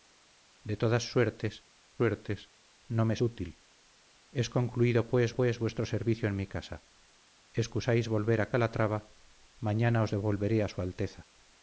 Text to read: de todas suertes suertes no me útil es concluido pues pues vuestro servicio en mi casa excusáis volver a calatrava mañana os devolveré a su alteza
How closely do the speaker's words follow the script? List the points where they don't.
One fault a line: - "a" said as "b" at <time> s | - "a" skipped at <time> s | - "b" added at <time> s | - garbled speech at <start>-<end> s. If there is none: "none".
none